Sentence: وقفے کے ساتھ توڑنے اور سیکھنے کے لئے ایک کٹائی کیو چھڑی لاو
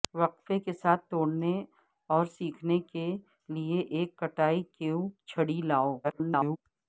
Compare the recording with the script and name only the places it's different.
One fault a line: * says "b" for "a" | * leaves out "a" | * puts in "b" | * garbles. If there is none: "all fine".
* garbles